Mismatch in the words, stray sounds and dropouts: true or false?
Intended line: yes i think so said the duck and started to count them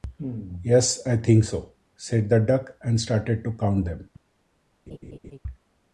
true